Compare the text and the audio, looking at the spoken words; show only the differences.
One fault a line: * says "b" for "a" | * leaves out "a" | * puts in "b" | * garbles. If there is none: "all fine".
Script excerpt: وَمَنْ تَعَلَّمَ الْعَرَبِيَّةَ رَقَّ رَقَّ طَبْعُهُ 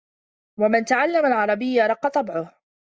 * leaves out "رَقَّ"